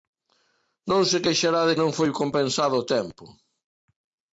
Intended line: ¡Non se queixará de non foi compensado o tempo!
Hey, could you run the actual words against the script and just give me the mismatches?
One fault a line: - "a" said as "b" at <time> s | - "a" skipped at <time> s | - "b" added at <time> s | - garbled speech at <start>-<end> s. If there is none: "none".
none